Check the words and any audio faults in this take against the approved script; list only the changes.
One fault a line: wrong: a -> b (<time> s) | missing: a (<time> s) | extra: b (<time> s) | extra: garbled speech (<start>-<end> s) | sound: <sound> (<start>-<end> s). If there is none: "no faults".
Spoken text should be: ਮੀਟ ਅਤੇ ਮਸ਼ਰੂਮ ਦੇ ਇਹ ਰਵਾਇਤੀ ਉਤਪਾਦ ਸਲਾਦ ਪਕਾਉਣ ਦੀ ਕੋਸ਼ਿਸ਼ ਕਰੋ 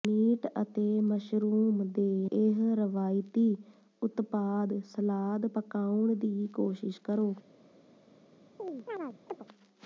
sound: chirp (8.6-9.5 s)